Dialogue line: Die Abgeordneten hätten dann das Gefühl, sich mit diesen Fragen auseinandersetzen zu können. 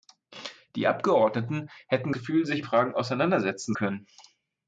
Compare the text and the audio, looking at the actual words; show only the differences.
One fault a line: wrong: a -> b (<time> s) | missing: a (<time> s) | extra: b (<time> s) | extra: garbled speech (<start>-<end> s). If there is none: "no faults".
missing: dann das (2.1 s)
missing: mit diesen (2.6 s)
missing: zu (3.7 s)